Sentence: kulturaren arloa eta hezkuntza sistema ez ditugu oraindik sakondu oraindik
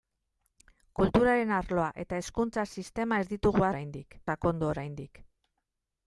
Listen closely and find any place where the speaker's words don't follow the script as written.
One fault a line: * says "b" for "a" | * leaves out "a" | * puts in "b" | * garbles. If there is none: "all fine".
all fine